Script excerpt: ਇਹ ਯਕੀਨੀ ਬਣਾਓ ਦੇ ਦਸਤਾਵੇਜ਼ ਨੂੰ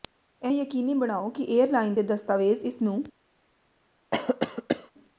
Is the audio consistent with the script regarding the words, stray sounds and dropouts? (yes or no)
no